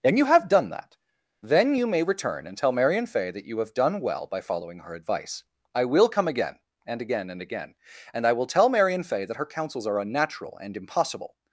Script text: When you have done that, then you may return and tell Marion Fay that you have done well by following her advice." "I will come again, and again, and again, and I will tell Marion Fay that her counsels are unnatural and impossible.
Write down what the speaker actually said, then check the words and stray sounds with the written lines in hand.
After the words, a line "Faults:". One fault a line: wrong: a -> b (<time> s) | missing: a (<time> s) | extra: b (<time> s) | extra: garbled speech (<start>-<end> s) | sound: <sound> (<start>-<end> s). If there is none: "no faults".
And you have done that, then you may return and tell Marion Fay that you have done well by following her advice." "I will come again, and again, and again, and I will tell Marion Fay that her counsels are unnatural and impossible.
Faults:
wrong: When -> And (0.0 s)